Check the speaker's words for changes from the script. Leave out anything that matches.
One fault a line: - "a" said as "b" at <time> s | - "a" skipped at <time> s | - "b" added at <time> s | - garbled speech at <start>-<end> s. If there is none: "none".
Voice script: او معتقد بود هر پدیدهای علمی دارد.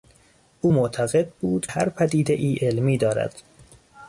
none